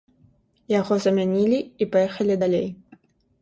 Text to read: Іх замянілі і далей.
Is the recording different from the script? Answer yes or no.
yes